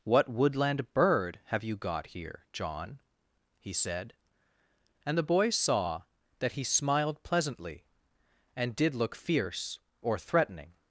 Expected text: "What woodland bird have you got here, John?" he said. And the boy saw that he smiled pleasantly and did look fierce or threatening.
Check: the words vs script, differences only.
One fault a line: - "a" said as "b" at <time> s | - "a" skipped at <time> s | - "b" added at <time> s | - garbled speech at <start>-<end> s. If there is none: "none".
none